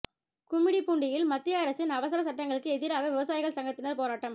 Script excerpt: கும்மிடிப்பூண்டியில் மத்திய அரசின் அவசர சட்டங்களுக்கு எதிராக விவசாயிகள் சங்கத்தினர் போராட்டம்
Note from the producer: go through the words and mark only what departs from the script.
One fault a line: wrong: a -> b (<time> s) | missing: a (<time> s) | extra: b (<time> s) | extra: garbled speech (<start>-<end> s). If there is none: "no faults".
no faults